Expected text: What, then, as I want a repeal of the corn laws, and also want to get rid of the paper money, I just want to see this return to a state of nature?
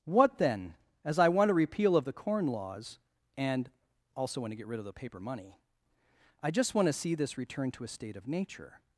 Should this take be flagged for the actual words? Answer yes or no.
no